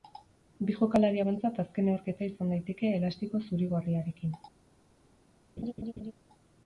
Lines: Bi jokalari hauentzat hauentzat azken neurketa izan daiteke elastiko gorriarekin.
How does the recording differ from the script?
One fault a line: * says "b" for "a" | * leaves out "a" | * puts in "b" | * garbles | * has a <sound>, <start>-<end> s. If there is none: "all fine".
* leaves out "hauentzat"
* puts in "zuri"
* has a laugh, 5.6-6.1 s